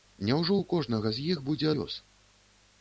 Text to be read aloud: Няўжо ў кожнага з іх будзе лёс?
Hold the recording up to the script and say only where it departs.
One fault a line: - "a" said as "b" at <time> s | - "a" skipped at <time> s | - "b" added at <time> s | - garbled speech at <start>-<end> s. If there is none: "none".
none